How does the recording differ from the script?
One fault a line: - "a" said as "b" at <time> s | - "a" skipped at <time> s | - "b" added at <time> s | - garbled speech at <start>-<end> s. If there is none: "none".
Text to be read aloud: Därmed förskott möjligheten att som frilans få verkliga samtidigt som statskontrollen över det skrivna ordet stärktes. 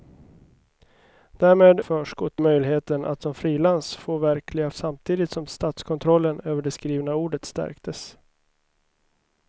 none